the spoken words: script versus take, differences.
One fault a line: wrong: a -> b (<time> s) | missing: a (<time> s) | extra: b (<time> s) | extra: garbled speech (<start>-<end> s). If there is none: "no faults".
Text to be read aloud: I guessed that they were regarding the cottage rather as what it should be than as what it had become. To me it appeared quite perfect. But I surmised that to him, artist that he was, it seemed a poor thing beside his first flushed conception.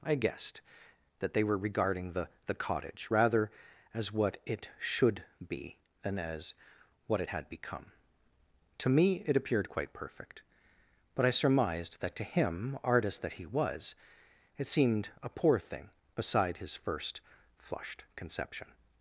extra: the (2.5 s)